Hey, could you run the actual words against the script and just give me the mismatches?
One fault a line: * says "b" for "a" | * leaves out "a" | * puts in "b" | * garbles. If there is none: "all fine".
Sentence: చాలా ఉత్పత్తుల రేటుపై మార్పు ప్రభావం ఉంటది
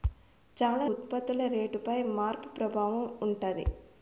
all fine